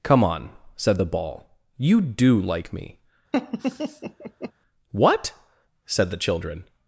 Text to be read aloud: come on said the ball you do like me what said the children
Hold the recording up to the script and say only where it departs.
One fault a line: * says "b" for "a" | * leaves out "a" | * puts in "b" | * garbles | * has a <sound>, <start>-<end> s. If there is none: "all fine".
* has a laugh, 3.3-4.5 s